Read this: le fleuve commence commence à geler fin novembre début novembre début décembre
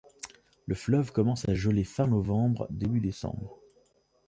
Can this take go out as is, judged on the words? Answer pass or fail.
fail